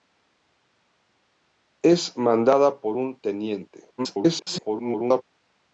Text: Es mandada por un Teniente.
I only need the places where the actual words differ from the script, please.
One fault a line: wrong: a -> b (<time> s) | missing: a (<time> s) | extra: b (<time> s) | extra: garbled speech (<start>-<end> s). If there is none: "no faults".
extra: garbled speech (4.0-5.2 s)